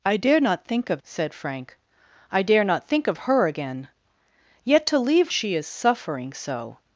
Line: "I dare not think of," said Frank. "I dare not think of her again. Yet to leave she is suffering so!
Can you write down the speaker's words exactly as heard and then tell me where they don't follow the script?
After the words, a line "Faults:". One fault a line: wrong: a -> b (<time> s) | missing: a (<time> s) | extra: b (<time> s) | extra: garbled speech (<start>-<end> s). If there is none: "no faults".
"I dare not think of," said Frank. "I dare not think of her again. Yet to leave she is suffering so!
Faults:
no faults